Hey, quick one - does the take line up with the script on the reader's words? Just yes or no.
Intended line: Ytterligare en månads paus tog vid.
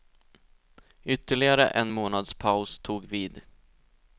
yes